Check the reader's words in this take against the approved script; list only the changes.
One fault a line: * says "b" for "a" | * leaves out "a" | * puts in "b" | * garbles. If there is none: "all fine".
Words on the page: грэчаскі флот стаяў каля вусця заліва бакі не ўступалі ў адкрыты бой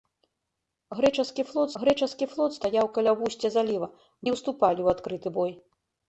* puts in "грэчаскі флот"
* leaves out "бакі"